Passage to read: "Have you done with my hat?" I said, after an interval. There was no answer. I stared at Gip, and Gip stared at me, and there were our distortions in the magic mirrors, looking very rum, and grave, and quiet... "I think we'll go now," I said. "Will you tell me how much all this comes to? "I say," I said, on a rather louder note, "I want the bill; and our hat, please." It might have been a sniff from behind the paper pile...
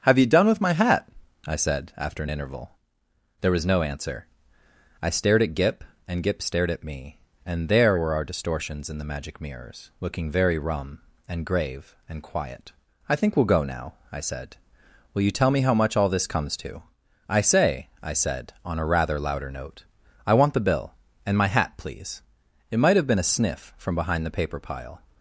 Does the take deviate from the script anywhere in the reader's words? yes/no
yes